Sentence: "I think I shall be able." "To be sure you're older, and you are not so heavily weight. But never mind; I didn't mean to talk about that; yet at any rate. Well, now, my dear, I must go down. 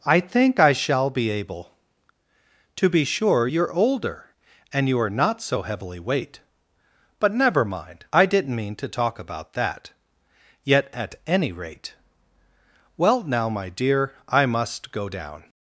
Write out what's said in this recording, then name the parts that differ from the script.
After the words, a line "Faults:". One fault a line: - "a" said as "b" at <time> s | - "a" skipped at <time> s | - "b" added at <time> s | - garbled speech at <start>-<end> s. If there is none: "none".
"I think I shall be able." "To be sure you're older, and you are not so heavily weight. But never mind; I didn't mean to talk about that; yet at any rate. Well, now, my dear, I must go down.
Faults:
none